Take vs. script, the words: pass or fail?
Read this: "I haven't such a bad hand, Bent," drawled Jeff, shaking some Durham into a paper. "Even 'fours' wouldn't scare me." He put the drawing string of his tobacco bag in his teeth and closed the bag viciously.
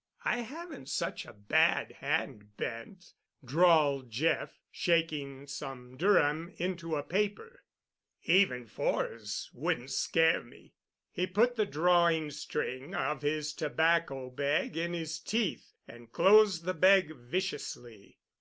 pass